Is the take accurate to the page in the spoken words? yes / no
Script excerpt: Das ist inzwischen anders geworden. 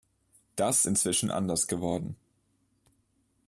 no